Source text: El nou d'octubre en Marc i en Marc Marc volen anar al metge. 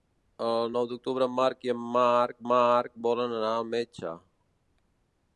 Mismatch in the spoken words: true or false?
false